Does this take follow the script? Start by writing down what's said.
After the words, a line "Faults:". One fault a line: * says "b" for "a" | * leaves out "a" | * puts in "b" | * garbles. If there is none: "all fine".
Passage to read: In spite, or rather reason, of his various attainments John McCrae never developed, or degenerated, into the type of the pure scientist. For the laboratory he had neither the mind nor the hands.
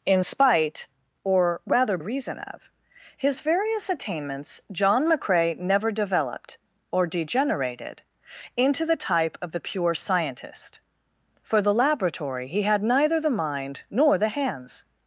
In spite, or rather reason, of his various attainments John McCrae never developed, or degenerated, into the type of the pure scientist. For the laboratory he had neither the mind nor the hands.
Faults:
all fine